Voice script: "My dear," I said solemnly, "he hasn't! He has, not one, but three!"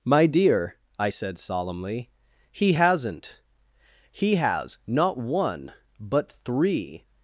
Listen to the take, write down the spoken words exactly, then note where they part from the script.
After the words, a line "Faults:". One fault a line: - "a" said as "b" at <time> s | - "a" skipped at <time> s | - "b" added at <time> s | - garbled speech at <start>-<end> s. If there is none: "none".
"My dear," I said solemnly, "he hasn't! He has, not one, but three!"
Faults:
none